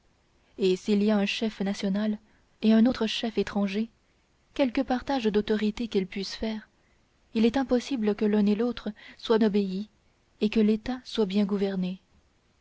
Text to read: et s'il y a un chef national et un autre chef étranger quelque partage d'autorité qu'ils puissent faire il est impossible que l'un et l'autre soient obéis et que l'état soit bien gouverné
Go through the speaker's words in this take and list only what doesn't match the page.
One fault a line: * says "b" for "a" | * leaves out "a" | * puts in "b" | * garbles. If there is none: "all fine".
all fine